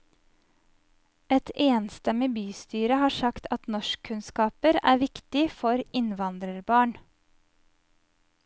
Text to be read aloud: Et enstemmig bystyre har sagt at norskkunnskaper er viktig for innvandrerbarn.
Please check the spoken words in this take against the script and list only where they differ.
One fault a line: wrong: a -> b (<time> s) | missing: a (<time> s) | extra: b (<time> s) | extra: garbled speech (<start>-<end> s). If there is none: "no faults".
no faults